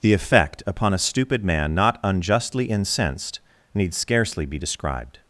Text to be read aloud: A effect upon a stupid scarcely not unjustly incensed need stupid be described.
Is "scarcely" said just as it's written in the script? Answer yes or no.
no